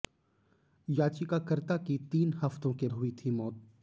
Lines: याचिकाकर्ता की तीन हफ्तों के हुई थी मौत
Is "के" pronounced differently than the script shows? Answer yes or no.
no